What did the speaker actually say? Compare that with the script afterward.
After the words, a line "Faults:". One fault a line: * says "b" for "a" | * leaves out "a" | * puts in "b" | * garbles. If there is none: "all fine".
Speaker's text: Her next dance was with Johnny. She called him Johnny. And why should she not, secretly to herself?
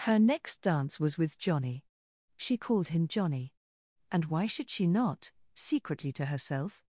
Her next dance was with Johnny. She called him Johnny. And why should she not, secretly to herself?
Faults:
all fine